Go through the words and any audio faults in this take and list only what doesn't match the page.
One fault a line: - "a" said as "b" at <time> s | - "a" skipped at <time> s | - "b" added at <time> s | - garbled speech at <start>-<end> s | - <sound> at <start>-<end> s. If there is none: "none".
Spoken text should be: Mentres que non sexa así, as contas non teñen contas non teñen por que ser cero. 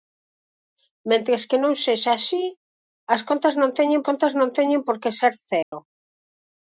- dropout at 5.6-5.7 s